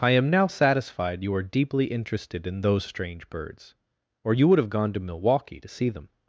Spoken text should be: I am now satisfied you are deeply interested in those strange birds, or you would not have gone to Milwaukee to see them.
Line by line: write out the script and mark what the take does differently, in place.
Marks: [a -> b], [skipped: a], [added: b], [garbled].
I am now satisfied you are deeply interested in those strange birds, or you would [skipped: not] have gone to Milwaukee to see them.